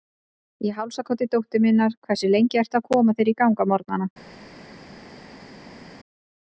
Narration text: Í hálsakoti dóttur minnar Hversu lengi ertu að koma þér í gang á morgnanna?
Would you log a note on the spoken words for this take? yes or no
no